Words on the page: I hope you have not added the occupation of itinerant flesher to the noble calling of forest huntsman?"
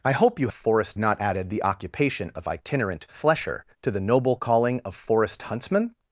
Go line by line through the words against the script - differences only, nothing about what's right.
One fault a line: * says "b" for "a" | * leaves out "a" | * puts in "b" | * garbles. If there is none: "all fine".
* says "forest" for "have"